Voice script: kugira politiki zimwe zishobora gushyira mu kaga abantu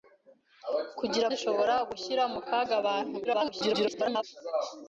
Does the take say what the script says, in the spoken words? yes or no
no